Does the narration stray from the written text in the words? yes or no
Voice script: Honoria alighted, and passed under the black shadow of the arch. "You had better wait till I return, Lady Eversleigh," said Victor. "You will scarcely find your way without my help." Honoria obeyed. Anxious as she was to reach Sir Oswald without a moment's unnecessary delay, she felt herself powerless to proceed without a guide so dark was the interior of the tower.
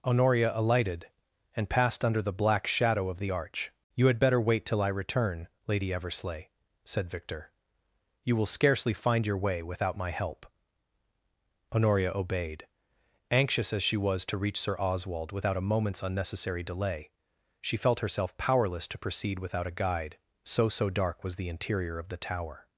yes